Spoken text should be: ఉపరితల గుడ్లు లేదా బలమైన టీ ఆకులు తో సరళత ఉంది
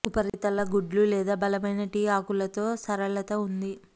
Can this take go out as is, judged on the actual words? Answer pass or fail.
pass